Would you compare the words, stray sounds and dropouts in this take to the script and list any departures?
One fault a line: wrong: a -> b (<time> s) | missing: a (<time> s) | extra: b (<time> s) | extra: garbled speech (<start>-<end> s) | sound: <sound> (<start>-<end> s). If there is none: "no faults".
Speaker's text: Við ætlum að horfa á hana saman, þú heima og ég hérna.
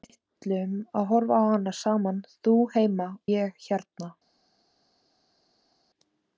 missing: og (3.1 s)